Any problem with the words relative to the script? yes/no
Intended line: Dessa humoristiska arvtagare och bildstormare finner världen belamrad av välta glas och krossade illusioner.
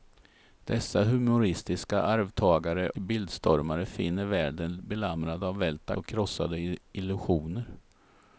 yes